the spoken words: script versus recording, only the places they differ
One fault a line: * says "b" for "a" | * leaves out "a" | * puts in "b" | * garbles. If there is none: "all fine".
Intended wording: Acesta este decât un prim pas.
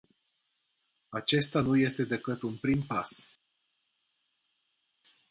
* puts in "nu"